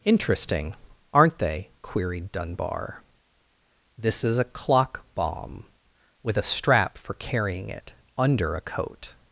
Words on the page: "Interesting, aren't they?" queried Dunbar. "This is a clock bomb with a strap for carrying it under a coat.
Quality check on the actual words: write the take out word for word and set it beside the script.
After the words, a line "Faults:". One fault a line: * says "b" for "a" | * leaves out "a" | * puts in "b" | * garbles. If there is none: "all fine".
"Interesting, aren't they?" queried Dunbar. "This is a clock bomb with a strap for carrying it under a coat.
Faults:
all fine